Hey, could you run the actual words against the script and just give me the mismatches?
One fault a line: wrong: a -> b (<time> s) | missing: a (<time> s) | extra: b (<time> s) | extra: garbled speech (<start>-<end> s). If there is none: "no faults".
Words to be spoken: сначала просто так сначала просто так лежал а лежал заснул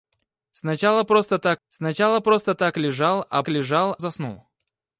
no faults